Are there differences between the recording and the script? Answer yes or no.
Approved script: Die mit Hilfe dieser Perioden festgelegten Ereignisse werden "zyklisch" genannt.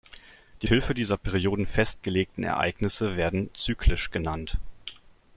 yes